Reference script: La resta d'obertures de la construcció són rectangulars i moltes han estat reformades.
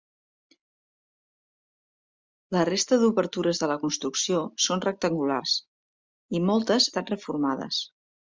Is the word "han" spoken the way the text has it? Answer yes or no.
no